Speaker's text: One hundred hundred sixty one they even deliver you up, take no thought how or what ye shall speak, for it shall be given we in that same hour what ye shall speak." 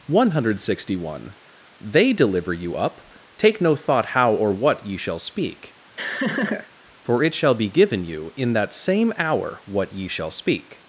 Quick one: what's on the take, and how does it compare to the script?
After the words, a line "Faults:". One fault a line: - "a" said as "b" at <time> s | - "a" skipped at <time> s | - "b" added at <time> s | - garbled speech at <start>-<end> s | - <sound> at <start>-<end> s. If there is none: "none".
One hundred sixty one they deliver you up, take no thought how or what ye shall speak, for it shall be given you in that same hour what ye shall speak."
Faults:
- "hundred" skipped at 0.6 s
- "even" skipped at 2.1 s
- laugh at 6.0-6.7 s
- "we" said as "you" at 8.0 s